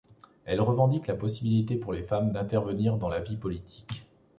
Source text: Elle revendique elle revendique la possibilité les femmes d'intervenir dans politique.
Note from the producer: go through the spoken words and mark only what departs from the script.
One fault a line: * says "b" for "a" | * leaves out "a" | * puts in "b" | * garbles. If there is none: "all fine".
* leaves out "elle revendique"
* puts in "pour"
* puts in "la vie"